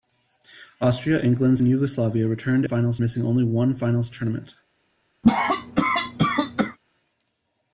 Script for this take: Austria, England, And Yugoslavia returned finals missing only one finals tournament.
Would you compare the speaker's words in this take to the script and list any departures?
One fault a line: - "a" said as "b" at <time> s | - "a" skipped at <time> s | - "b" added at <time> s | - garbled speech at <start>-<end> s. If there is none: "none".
none